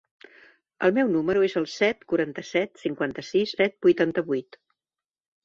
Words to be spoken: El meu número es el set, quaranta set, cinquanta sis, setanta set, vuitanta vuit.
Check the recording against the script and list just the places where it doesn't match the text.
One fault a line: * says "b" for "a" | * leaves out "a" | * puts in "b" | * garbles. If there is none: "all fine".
* leaves out "setanta"